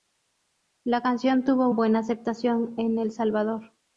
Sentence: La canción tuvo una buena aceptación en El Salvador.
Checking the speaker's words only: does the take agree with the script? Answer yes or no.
no